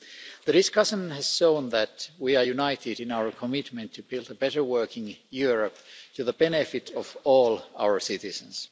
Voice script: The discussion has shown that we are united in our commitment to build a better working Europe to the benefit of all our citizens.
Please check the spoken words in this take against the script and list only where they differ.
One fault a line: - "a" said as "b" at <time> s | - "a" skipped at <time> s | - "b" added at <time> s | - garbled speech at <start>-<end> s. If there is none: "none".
none